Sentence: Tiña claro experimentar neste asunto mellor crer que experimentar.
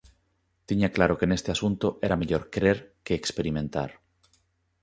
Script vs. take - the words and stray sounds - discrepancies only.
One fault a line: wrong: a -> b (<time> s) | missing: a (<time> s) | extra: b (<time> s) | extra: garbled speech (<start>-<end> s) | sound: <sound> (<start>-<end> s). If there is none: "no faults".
wrong: experimentar -> que (1.2 s)
extra: era (2.1 s)